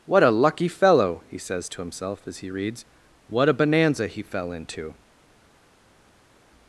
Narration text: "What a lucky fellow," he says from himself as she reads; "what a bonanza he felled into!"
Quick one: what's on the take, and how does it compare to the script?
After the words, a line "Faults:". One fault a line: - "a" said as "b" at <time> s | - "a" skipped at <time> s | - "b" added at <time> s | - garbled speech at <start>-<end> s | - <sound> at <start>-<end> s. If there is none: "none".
"What a lucky fellow," he says to himself as he reads; "what a bonanza he fell into!"
Faults:
- "from" said as "to" at 1.7 s
- "she" said as "he" at 2.4 s
- "felled" said as "fell" at 4.2 s